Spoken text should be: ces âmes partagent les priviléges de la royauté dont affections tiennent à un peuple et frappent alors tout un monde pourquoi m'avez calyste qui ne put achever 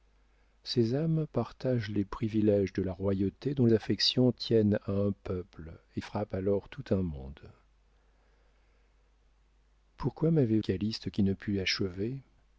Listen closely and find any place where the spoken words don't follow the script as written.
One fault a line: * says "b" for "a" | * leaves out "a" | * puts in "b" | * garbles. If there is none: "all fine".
all fine